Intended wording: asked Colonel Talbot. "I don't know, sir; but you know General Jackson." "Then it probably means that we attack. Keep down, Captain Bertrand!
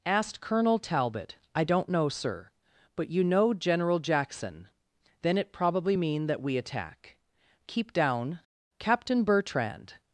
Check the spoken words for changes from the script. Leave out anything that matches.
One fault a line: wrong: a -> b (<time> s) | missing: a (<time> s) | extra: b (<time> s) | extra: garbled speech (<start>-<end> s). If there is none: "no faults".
wrong: means -> mean (5.9 s)